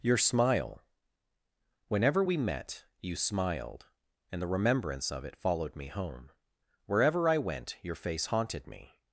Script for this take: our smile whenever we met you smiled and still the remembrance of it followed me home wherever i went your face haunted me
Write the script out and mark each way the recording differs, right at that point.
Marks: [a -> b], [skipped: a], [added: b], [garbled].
[our -> your] smile whenever we met you smiled and [skipped: still] the remembrance of it followed me home wherever i went your face haunted me